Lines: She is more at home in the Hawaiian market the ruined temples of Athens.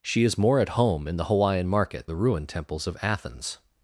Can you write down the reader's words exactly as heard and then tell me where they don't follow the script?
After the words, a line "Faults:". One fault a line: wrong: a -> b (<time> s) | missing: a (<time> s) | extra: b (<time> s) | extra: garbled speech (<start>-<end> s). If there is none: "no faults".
She is more at home in the Hawaiian market the ruined temples of Athens.
Faults:
no faults